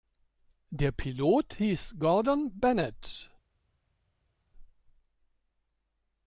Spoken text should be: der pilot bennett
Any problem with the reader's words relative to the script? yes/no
yes